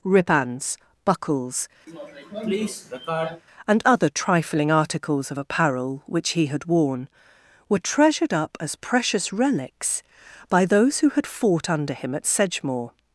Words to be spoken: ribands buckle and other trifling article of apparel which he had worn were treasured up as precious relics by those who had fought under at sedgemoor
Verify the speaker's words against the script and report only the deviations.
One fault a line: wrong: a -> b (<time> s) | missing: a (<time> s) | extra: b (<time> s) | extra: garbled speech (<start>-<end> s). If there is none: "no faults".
wrong: buckle -> buckles (1.1 s)
wrong: article -> articles (4.7 s)
extra: him (11.9 s)